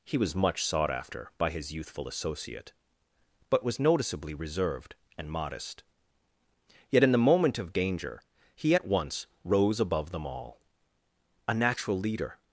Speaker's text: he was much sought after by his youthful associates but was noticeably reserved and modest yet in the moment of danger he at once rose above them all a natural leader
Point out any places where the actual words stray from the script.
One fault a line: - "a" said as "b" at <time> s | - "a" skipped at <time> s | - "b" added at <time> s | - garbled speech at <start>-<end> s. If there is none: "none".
- "associates" said as "associate" at 2.1 s